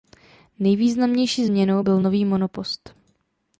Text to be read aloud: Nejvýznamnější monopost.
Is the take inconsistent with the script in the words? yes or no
yes